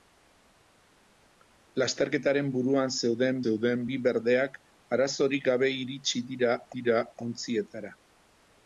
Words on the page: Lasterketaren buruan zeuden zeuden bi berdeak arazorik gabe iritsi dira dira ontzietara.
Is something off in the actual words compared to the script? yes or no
no